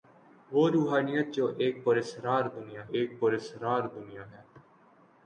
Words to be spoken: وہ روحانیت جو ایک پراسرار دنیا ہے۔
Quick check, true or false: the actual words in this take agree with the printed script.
false